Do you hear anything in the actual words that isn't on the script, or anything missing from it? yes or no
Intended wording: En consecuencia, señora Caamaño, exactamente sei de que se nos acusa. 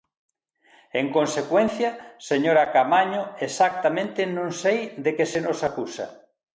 yes